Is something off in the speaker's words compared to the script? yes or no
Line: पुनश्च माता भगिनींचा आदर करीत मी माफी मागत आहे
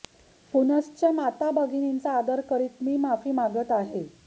no